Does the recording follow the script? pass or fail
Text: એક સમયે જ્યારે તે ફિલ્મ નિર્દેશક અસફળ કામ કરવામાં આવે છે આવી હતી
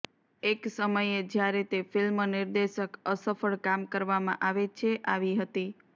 pass